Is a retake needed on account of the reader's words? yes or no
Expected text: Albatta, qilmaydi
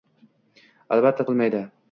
no